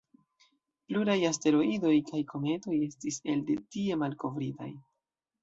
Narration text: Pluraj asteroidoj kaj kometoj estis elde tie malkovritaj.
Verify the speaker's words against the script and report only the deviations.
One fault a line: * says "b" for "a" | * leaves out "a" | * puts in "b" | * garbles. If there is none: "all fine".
all fine